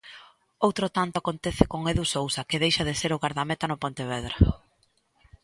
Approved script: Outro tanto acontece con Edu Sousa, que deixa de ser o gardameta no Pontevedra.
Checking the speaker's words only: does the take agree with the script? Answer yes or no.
yes